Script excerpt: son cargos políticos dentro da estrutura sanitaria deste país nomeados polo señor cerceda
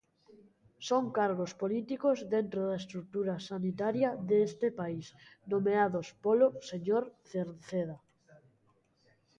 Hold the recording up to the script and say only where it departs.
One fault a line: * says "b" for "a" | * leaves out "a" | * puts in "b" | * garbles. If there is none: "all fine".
all fine